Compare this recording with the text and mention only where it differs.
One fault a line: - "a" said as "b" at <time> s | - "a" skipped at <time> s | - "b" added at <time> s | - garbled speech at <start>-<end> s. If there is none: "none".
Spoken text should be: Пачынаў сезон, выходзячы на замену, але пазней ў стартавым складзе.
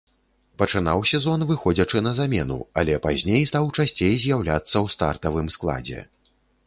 - "стаў часцей з'яўляцца" added at 3.5 s